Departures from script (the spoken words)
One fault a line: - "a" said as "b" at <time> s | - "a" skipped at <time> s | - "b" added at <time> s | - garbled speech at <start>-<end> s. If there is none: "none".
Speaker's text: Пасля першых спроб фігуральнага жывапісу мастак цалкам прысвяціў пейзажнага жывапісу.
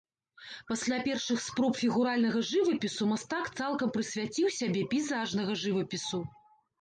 - "сябе" added at 4.6 s